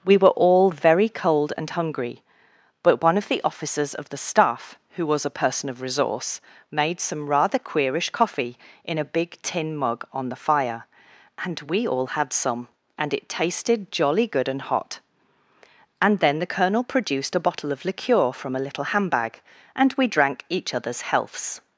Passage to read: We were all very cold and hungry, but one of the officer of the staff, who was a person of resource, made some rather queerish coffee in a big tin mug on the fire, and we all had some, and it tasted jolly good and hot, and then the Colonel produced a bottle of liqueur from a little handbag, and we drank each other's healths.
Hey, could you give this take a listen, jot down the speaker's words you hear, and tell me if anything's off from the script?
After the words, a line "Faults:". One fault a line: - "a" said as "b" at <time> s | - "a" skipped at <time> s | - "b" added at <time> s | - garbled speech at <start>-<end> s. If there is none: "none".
We were all very cold and hungry, but one of the officers of the staff, who was a person of resource, made some rather queerish coffee in a big tin mug on the fire, and we all had some, and it tasted jolly good and hot, and then the Colonel produced a bottle of liqueur from a little handbag, and we drank each other's healths.
Faults:
- "officer" said as "officers" at 3.4 s